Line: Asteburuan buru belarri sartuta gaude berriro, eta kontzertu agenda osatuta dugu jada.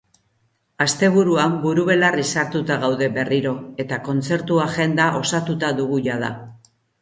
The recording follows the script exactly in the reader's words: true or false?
true